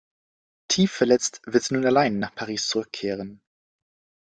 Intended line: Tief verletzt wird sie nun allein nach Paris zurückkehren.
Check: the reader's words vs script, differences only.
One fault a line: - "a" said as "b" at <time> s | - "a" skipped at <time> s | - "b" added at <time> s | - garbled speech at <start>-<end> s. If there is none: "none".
none